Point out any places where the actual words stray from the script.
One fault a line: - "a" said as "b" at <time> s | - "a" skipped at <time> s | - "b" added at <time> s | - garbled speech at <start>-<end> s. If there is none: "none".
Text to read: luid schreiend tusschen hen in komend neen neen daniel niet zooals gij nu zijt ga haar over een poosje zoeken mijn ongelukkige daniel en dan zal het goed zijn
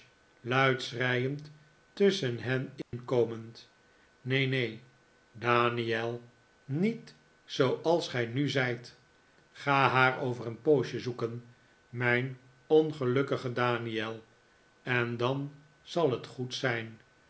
none